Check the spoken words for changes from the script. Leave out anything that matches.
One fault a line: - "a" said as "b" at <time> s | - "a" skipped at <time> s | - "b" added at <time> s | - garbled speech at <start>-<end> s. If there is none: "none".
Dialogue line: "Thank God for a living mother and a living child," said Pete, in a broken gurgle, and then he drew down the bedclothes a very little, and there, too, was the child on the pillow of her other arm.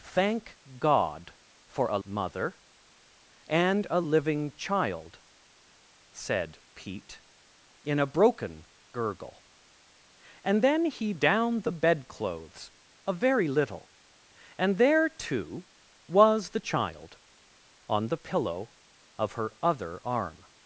- "living" skipped at 2.0 s
- "drew" skipped at 11.1 s